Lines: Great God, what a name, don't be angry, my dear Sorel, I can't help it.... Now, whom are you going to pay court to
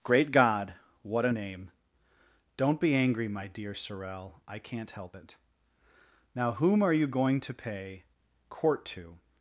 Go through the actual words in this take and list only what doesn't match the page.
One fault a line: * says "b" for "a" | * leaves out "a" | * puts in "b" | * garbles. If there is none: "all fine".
all fine